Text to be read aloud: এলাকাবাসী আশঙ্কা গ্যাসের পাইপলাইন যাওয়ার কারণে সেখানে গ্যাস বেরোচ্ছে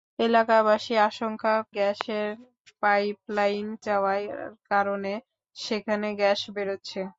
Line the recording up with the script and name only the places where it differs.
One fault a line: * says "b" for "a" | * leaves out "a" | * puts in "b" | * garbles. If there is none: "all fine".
all fine